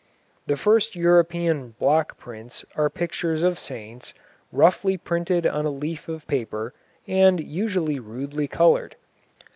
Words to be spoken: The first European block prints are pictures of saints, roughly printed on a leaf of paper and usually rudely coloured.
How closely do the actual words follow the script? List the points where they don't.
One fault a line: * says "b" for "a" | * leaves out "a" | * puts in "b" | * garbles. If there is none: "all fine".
all fine